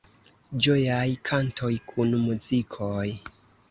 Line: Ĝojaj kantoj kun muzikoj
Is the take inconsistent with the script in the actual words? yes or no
no